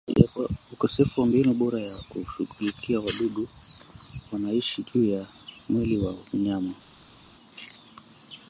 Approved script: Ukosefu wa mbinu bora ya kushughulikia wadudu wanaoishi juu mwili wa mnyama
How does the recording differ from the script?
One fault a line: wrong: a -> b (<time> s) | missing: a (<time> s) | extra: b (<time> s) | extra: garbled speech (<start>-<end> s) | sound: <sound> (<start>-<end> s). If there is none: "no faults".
extra: ya (5.1 s)